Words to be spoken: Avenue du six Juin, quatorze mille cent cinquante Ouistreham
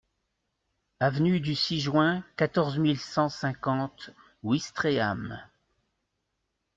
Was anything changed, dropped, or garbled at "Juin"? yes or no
no